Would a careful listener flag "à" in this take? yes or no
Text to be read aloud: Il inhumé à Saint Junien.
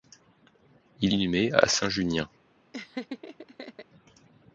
no